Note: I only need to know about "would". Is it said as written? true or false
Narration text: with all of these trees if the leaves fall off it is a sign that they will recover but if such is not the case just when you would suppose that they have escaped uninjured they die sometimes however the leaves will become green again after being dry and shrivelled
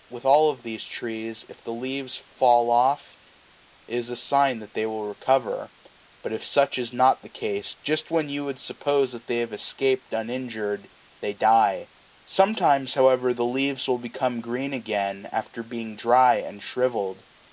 true